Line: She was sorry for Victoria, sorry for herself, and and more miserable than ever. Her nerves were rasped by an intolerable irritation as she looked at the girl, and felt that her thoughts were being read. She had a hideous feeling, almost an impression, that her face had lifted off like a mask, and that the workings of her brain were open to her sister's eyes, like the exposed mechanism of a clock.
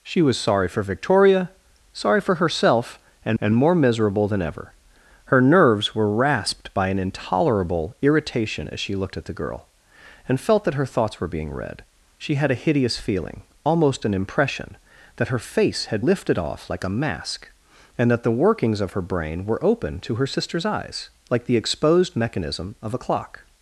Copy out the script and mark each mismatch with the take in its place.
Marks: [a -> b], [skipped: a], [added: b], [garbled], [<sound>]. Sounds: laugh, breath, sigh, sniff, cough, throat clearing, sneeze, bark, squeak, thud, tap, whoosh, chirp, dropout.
She was sorry for Victoria, sorry for herself, and and more miserable than ever. Her nerves were rasped by an intolerable irritation as she looked at the girl, and felt that her thoughts were being read. She had a hideous feeling, almost an impression, that her face had lifted off like a mask, and that the workings of her brain were open to her sister's eyes, like the exposed mechanism of a clock.